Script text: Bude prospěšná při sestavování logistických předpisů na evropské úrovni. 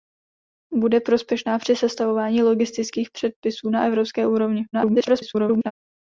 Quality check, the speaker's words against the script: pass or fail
fail